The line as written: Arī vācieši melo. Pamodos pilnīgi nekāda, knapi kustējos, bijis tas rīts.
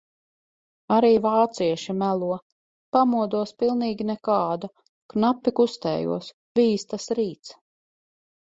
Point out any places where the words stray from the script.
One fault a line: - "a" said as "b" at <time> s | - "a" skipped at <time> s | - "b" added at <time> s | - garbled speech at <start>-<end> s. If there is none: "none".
none